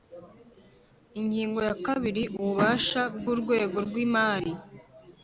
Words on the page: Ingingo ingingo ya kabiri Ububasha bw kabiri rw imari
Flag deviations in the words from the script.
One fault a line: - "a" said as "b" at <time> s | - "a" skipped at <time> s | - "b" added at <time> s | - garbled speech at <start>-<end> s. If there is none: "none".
- "ingingo" skipped at 1.6 s
- "kabiri" said as "urwego" at 3.3 s